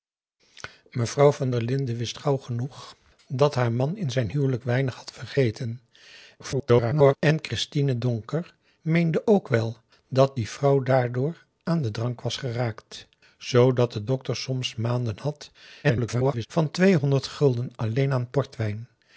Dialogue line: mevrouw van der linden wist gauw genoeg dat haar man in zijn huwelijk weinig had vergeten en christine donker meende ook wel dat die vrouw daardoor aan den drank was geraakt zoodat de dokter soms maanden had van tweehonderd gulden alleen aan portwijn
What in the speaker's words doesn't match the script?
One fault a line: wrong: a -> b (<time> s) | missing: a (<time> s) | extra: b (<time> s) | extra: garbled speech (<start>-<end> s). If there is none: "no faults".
extra: garbled speech (6.4-7.2 s)
extra: garbled speech (15.8-16.5 s)